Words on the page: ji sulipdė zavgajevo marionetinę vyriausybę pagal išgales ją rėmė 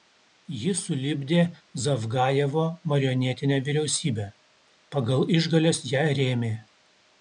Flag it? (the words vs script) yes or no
no